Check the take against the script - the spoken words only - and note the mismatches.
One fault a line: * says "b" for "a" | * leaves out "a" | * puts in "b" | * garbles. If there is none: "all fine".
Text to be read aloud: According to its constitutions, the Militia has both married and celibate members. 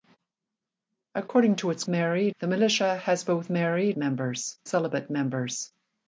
* says "married" for "constitutions"
* says "members" for "and"